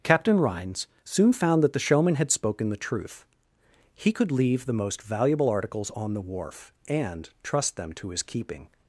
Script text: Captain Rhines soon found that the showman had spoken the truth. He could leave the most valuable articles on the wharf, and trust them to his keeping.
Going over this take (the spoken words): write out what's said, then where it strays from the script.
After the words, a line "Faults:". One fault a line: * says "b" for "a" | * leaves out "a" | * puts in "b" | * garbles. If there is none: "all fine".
Captain Rhines soon found that the showman had spoken the truth. He could leave the most valuable articles on the wharf, and trust them to his keeping.
Faults:
all fine